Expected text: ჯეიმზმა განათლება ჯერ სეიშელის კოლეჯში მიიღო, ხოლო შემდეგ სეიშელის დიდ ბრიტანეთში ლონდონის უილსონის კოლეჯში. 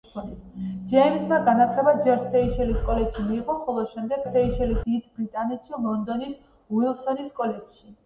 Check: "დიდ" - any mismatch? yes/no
no